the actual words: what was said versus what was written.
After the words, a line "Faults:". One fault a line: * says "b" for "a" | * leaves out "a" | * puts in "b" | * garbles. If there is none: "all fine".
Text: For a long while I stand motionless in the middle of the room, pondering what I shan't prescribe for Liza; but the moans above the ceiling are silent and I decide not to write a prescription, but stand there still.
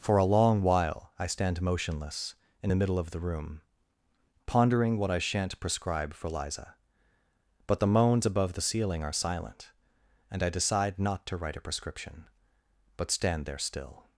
For a long while I stand motionless in the middle of the room, pondering what I shan't prescribe for Liza; but the moans above the ceiling are silent and I decide not to write a prescription, but stand there still.
Faults:
all fine